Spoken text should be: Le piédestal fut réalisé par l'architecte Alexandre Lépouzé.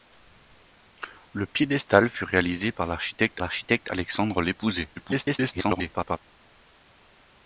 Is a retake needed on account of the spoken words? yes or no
yes